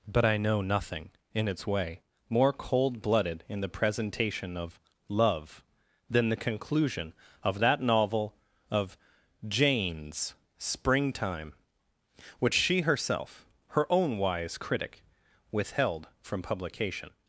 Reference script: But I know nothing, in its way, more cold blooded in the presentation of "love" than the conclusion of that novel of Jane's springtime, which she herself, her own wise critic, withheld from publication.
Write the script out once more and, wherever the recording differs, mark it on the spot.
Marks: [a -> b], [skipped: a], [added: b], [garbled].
But I know nothing, in its way, more cold blooded in the presentation of "love" than the conclusion of that novel of Jane's springtime, which she herself, her own wise critic, withheld from publication.